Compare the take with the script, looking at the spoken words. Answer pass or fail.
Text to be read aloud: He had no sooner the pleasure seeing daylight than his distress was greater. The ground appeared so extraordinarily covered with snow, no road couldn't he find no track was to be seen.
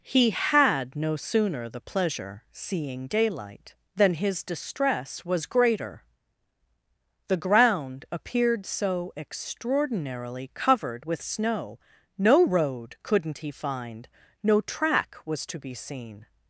pass